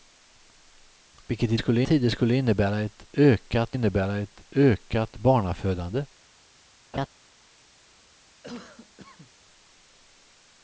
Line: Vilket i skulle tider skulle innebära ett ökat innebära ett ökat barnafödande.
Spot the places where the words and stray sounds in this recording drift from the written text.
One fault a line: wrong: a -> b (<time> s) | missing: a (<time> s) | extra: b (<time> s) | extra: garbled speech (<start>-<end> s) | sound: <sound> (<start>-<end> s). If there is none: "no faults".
sound: laugh (6.9-7.1 s)
sound: cough (8.4-9.3 s)